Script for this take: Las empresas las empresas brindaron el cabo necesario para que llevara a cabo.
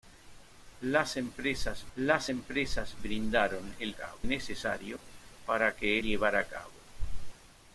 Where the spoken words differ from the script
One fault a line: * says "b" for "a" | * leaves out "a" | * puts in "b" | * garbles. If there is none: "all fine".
all fine